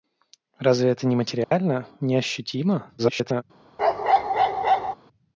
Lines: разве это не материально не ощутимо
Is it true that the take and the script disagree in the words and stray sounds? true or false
true